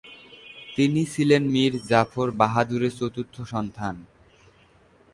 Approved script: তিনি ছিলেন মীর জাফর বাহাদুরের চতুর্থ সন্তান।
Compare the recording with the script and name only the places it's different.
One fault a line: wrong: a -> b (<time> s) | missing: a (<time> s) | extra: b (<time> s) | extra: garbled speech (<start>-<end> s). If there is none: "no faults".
no faults